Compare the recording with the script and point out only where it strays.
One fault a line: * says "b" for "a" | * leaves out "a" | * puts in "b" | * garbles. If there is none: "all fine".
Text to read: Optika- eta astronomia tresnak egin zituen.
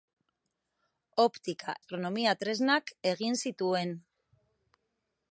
* leaves out "eta"